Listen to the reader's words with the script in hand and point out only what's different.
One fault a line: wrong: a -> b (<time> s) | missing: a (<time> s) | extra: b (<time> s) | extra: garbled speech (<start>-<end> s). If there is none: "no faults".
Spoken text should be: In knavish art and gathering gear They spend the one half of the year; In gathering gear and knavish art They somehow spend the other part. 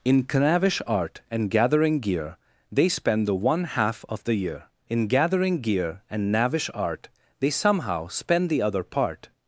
no faults